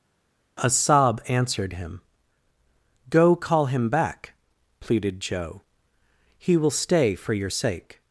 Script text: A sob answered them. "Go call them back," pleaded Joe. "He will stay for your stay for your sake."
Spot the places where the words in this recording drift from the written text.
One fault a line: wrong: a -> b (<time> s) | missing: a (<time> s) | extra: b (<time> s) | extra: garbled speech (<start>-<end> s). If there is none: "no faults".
wrong: them -> him (1.7 s)
wrong: them -> him (3.7 s)
missing: stay for your (7.5 s)